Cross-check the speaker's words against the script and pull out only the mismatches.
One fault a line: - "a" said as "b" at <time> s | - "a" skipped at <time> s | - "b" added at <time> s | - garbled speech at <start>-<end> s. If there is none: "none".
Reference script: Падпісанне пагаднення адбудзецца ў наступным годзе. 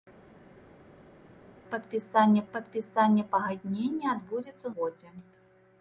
- "падпісанне" added at 2.5 s
- "наступным" skipped at 4.7 s